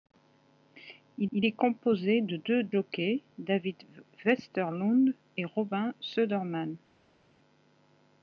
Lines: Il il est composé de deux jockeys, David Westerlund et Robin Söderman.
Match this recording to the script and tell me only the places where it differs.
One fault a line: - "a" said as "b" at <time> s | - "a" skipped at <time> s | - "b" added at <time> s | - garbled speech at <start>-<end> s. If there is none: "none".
none